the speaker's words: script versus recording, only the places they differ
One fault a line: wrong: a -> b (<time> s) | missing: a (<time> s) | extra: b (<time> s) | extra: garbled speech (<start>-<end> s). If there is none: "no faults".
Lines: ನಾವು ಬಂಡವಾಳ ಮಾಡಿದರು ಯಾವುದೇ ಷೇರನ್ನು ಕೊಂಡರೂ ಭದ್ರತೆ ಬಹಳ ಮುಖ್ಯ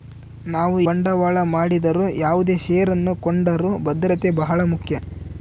no faults